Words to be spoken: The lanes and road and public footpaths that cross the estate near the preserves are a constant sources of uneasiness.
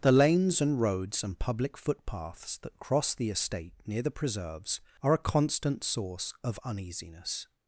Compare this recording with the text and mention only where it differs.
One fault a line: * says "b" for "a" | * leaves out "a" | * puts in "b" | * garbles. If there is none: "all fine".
* says "roads" for "road"
* says "source" for "sources"